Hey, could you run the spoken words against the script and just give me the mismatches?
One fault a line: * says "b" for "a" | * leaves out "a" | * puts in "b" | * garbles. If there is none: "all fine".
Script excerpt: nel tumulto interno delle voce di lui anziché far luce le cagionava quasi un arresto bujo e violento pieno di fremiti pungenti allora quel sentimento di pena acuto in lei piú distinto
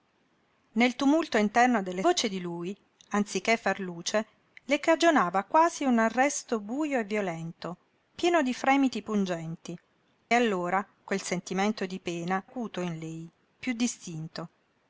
all fine